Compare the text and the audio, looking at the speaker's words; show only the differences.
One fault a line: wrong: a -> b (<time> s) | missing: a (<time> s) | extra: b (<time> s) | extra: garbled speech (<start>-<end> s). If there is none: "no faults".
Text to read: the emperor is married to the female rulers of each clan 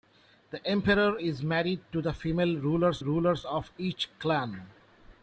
extra: rulers (3.0 s)